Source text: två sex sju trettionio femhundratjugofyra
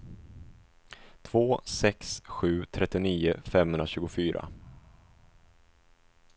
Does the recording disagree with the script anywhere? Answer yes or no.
no